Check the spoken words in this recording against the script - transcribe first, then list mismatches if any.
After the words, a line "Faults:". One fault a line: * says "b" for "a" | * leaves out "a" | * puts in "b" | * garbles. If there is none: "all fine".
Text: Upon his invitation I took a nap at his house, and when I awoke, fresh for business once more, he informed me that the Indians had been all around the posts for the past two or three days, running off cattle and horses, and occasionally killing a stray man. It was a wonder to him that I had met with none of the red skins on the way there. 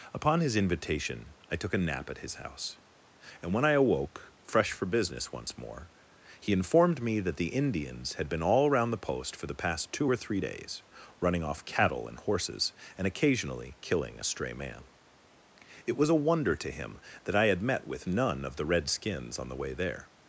Upon his invitation I took a nap at his house, and when I awoke, fresh for business once more, he informed me that the Indians had been all around the post for the past two or three days, running off cattle and horses, and occasionally killing a stray man. It was a wonder to him that I had met with none of the red skins on the way there.
Faults:
* says "post" for "posts"